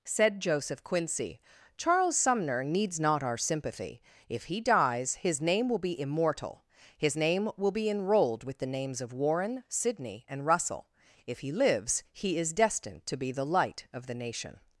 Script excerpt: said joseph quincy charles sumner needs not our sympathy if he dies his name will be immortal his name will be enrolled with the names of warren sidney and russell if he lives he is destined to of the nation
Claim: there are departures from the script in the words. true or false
true